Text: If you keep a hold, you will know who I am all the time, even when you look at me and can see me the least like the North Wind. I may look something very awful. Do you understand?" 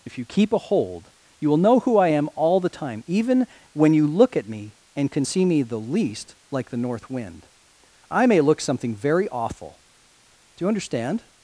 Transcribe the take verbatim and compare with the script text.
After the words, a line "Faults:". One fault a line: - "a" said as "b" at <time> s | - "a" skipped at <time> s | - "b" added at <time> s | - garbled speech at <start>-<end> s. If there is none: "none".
If you keep a hold, you will know who I am all the time, even when you look at me and can see me the least like the North Wind. I may look something very awful. Do you understand?"
Faults:
none